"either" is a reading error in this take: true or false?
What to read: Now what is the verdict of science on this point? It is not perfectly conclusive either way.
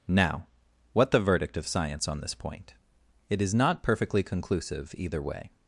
false